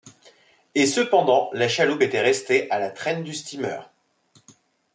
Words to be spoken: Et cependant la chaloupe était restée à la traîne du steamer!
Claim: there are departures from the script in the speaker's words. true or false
false